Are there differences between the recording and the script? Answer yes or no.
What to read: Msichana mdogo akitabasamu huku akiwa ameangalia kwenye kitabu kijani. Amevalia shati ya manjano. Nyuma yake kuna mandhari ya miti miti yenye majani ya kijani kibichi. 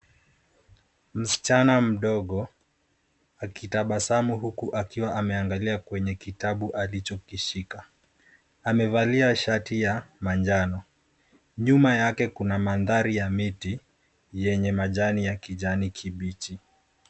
yes